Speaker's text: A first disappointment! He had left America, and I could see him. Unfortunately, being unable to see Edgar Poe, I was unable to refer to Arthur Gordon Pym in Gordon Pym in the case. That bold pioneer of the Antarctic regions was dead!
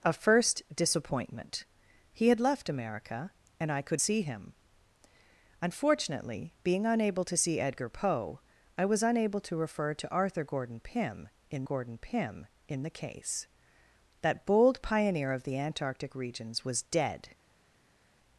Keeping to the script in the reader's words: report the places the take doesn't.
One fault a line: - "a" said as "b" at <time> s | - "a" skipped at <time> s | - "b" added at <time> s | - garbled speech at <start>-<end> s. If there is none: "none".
none